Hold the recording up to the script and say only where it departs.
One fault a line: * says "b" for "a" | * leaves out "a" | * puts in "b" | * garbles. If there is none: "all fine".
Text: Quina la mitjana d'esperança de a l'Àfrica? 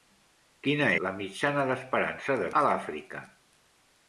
all fine